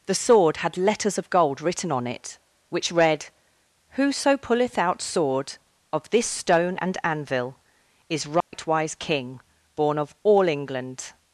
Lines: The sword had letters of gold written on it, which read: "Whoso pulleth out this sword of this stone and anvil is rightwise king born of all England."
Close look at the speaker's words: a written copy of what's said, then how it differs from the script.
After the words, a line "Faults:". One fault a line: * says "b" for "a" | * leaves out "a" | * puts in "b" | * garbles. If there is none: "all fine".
The sword had letters of gold written on it, which read: "Whoso pulleth out sword of this stone and anvil is rightwise king born of all England."
Faults:
* leaves out "this"